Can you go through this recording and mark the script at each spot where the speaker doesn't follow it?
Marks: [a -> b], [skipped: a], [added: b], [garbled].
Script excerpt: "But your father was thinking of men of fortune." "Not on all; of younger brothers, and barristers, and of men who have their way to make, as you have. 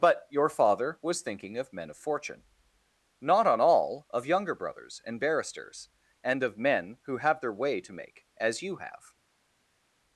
"But your father was thinking of men of fortune." "Not on all; of younger brothers, and barristers, and of men who have their way to make, as you have.